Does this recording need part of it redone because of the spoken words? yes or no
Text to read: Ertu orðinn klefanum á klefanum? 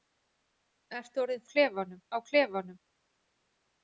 no